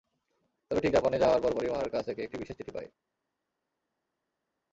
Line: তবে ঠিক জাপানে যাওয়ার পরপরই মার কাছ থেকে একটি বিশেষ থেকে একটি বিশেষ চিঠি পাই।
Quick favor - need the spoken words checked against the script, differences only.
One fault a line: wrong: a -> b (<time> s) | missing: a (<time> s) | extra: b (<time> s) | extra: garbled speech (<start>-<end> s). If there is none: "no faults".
missing: থেকে একটি বিশেষ (2.6 s)